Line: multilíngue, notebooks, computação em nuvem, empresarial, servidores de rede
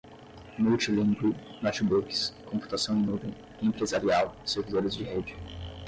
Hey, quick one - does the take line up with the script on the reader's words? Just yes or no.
yes